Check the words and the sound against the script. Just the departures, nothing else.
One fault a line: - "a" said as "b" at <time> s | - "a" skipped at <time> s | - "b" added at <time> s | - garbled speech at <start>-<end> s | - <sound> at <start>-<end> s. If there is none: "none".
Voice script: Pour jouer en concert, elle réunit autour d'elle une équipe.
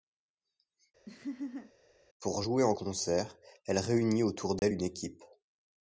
- laugh at 1.1-1.7 s
- dropout at 4.6-4.6 s